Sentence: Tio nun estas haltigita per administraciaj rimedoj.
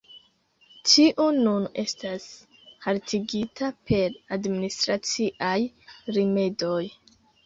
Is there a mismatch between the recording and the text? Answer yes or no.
no